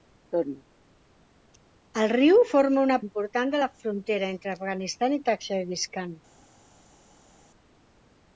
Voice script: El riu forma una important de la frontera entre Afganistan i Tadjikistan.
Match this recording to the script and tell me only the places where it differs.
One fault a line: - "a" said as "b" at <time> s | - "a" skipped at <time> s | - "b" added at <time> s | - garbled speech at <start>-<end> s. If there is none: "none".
none